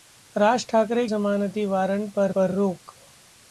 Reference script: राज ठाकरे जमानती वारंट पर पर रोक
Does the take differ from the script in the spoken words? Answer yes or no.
no